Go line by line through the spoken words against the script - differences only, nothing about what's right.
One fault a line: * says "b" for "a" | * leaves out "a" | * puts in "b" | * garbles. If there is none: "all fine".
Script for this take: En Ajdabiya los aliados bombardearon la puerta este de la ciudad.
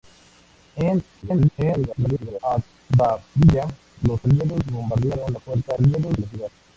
* garbles
* says "aliados" for "este"